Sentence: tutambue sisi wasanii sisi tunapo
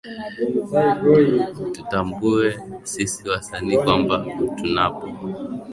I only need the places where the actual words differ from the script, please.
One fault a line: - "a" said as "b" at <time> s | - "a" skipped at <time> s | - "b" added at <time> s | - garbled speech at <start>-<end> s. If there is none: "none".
- "sisi" said as "kwamba" at 3.8 s